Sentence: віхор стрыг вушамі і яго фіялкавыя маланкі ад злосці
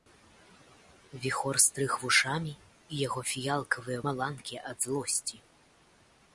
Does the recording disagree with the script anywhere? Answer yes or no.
no